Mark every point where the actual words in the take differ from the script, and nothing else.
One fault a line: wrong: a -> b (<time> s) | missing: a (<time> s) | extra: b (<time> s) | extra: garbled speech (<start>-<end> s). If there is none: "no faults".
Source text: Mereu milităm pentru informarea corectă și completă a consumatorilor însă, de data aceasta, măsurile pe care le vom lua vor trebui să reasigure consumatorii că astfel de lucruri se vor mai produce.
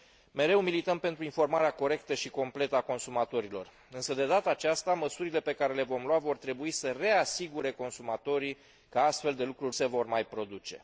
no faults